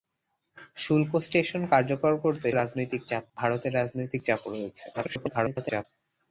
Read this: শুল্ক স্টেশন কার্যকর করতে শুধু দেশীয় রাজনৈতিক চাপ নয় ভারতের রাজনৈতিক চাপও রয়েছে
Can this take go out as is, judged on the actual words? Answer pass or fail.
fail